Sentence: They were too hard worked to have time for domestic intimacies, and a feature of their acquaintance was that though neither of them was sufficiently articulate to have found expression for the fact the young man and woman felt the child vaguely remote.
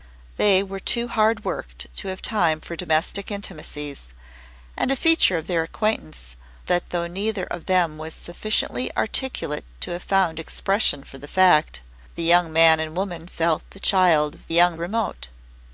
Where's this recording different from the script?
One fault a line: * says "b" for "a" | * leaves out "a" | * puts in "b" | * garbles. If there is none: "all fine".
* leaves out "was"
* says "young" for "vaguely"